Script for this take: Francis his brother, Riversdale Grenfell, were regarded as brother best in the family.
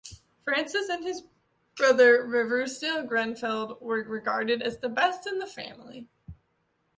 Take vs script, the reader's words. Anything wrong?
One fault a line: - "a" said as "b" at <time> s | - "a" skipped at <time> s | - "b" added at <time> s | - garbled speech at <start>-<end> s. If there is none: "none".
- "and" added at 0.9 s
- "brother" said as "the" at 4.8 s